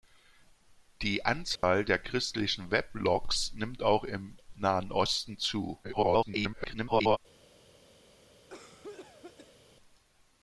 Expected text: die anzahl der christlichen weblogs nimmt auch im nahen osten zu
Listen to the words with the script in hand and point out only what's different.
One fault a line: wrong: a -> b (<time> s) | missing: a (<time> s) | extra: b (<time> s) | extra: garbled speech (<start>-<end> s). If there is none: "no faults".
extra: garbled speech (5.8-7.2 s)